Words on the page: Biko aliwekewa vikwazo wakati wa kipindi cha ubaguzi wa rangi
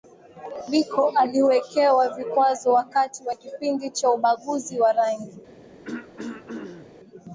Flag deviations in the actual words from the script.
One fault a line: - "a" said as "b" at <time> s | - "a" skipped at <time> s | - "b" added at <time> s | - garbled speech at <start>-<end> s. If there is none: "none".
none